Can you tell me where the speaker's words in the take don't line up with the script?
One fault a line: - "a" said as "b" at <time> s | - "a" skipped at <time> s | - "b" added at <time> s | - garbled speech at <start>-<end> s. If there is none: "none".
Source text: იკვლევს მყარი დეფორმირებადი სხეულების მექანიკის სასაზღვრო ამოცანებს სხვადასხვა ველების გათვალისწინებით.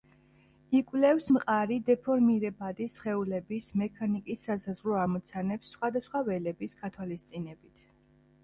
none